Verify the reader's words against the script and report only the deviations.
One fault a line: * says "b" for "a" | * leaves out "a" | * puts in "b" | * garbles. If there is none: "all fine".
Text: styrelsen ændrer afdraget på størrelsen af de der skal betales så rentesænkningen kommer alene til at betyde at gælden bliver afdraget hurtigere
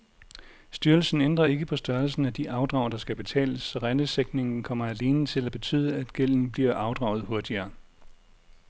* says "ikke" for "afdraget"
* puts in "afdrag"